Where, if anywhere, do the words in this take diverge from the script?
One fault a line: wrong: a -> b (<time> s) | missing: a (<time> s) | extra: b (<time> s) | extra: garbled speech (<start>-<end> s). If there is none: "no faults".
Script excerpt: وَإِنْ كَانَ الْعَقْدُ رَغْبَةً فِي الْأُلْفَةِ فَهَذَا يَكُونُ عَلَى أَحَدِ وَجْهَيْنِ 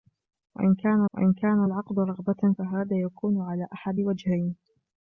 extra: وَإِنْ كَانَ (1.1 s)
missing: فِي الْأُلْفَةِ (2.5 s)